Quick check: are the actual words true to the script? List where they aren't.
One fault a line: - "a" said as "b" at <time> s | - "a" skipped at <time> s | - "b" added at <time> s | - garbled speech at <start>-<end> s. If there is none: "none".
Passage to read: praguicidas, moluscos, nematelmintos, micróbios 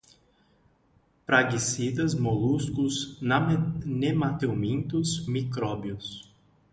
none